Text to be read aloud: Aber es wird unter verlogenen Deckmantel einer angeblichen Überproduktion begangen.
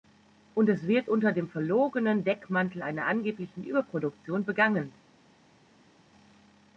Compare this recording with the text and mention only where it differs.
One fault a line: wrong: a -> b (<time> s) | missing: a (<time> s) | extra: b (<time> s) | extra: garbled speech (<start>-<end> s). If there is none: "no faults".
wrong: Aber -> Und (0.6 s)
extra: dem (1.3 s)